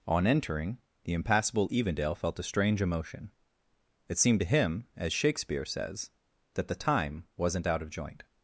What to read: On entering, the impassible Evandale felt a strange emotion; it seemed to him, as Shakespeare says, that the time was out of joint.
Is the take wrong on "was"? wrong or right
wrong